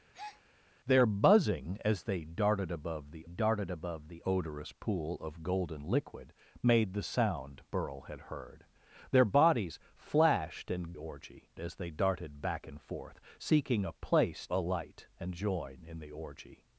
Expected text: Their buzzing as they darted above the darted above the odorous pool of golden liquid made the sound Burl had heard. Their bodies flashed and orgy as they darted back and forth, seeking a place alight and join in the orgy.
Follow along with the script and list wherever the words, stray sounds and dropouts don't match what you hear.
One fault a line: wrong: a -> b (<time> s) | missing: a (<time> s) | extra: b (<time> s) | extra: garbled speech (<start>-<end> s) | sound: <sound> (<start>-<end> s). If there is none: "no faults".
sound: breath (0.1-0.4 s)